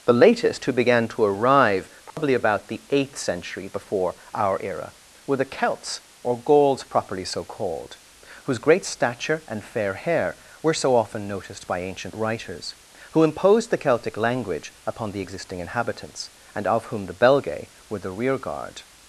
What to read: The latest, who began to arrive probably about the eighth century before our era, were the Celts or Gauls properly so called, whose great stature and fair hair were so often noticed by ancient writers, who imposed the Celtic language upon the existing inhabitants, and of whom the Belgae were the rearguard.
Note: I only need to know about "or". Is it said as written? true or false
true